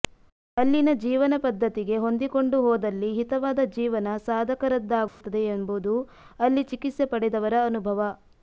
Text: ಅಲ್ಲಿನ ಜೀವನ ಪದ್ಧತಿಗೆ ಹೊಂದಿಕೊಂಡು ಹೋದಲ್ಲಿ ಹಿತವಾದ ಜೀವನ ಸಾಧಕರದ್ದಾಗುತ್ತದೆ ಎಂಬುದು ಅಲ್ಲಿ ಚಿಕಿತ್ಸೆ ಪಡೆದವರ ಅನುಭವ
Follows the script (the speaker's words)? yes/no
yes